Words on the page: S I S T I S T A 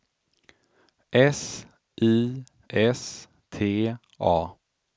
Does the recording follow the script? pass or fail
fail